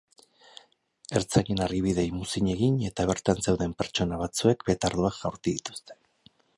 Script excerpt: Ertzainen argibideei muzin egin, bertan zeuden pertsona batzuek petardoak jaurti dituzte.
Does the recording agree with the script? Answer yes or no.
no